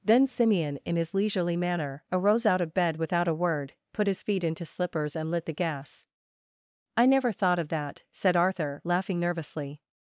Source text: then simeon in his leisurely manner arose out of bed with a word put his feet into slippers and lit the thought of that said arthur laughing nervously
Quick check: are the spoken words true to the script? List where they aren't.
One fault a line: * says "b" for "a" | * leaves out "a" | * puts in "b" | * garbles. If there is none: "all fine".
* says "without" for "with"
* puts in "gas i never"